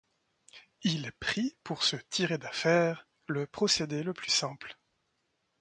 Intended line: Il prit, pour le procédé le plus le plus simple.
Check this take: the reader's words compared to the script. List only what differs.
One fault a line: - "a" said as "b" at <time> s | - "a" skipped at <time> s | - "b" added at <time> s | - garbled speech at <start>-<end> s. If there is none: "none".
- "le procédé" said as "se tirer d'affaire" at 1.8 s
- "plus" said as "procédé" at 3.5 s